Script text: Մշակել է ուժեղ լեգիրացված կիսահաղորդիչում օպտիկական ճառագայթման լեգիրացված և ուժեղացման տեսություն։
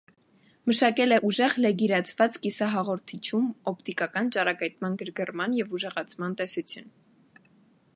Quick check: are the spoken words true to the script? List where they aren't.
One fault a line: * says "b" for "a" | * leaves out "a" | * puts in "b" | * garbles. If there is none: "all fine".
* says "գրգռման" for "լեգիրացված"